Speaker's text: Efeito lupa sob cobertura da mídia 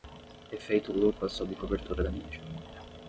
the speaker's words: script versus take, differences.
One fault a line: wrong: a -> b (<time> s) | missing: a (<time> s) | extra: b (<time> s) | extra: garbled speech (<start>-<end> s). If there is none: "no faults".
no faults